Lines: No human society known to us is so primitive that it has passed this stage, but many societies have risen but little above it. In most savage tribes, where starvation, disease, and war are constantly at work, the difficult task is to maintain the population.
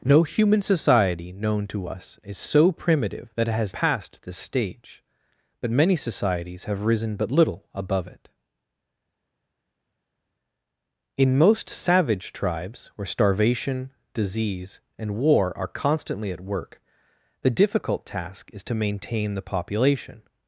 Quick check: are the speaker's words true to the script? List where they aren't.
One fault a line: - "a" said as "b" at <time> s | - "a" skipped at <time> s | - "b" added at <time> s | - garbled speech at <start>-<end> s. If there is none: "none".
none